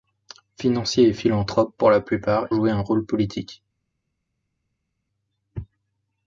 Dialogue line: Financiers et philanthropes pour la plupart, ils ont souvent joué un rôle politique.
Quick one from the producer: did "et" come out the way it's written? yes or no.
yes